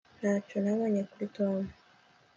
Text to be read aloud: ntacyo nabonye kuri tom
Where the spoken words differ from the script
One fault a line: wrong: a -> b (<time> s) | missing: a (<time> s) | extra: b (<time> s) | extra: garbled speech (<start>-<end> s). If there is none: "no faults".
no faults